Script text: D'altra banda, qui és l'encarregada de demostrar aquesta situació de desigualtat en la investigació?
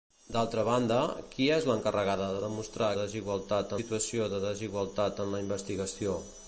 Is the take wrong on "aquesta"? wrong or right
wrong